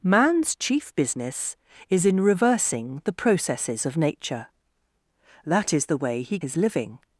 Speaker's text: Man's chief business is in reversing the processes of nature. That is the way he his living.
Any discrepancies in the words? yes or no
no